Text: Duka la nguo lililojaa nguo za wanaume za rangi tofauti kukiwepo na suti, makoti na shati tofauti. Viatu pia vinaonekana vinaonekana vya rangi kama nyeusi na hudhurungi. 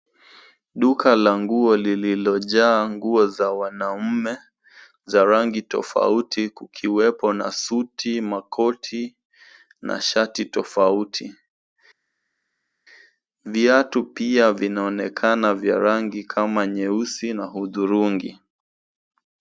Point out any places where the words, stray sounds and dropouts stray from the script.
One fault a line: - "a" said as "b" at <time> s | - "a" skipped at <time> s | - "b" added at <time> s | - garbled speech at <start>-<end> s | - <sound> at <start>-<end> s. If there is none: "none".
- "vinaonekana" skipped at 15.5 s